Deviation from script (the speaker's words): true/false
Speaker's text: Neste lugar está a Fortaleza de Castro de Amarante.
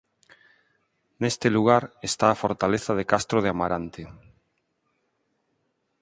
false